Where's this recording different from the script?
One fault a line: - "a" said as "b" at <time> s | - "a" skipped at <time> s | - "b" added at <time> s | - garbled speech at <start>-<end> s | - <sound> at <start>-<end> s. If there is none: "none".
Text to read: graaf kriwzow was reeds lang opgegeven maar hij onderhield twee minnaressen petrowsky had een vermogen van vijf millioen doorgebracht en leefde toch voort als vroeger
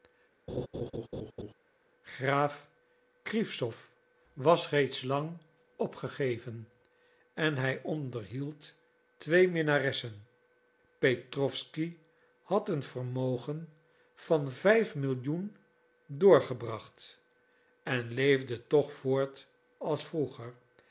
- laugh at 0.5-1.5 s
- "maar" said as "en" at 7.3 s